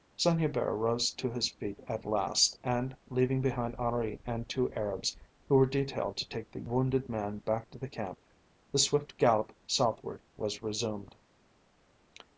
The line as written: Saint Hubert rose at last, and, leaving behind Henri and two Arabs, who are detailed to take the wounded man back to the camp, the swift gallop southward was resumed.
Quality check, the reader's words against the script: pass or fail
fail